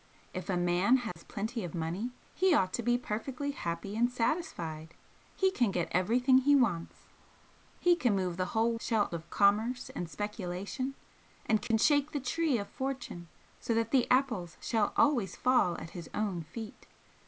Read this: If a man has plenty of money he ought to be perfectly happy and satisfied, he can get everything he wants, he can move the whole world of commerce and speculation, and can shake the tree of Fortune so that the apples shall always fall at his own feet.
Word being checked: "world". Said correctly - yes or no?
no